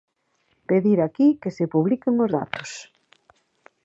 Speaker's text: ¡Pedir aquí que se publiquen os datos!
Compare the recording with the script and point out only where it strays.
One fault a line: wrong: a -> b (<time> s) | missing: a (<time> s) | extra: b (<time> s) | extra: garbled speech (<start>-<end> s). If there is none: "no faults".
no faults